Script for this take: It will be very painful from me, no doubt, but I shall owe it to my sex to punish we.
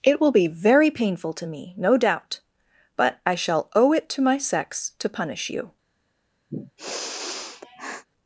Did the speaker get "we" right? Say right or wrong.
wrong